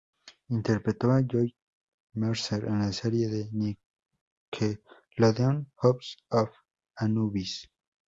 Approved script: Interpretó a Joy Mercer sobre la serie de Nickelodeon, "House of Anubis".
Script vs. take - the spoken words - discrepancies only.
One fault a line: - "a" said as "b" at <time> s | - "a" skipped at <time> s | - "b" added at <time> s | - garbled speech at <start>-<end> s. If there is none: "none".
- "sobre" said as "en" at 2.6 s